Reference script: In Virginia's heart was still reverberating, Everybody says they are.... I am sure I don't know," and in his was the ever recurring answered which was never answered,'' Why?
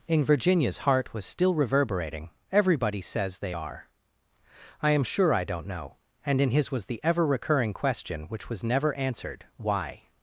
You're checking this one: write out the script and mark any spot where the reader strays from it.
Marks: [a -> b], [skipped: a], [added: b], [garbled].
In Virginia's heart was still reverberating, Everybody says they are.... I am sure I don't know," and in his was the ever recurring [answered -> question] which was never answered,'' Why?